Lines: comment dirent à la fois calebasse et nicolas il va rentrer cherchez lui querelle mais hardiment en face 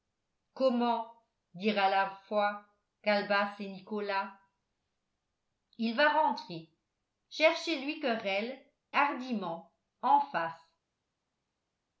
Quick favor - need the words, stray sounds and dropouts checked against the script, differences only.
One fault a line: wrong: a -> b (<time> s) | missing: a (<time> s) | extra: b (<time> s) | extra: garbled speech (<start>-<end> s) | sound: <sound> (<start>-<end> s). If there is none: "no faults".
missing: mais (8.6 s)